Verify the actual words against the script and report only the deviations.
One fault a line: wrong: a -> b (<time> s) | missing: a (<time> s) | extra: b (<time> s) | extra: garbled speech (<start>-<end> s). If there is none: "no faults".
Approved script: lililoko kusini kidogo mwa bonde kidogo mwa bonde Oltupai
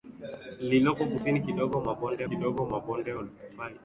no faults